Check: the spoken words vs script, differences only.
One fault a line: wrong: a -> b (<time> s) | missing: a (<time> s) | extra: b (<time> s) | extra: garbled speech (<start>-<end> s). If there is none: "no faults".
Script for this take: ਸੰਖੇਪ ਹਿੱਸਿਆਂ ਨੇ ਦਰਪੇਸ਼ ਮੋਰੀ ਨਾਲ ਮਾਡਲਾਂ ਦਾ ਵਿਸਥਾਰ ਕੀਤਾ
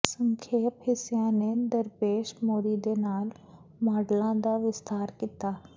extra: ਦੇ (2.8 s)